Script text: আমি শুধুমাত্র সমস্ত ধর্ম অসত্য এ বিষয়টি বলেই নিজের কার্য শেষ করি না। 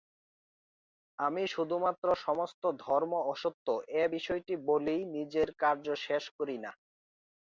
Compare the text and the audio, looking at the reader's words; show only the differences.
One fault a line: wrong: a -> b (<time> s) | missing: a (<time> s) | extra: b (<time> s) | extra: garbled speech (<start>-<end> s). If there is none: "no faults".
no faults